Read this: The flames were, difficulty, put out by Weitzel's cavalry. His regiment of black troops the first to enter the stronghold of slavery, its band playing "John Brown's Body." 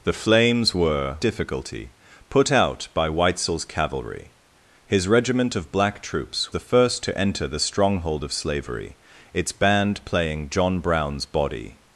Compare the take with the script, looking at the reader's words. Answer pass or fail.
pass